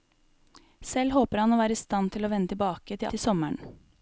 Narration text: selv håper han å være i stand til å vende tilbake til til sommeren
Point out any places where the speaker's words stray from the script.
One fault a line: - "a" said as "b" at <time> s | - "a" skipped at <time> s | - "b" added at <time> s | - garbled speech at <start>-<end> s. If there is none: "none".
none